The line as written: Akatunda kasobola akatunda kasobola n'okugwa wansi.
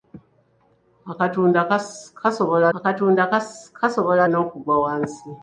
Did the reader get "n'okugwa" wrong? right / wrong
right